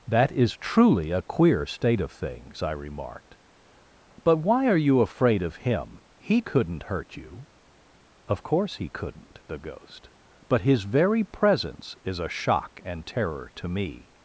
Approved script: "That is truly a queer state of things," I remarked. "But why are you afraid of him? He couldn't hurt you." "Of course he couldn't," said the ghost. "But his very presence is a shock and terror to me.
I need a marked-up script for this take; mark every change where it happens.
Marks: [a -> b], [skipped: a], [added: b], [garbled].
"That is truly a queer state of things," I remarked. "But why are you afraid of him? He couldn't hurt you." "Of course he couldn't," [skipped: said] the ghost. "But his very presence is a shock and terror to me.